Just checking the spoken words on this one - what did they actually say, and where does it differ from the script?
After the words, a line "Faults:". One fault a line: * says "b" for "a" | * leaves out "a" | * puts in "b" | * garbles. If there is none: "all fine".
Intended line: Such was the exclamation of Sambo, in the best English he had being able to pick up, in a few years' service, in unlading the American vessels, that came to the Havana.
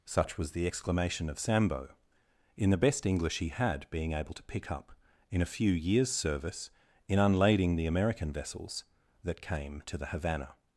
Such was the exclamation of Sambo, in the best English he had being able to pick up, in a few years' service, in unlading the American vessels, that came to the Havana.
Faults:
all fine